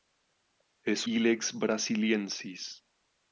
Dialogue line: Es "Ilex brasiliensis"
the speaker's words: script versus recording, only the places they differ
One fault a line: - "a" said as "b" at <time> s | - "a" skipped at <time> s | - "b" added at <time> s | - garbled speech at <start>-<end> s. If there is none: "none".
none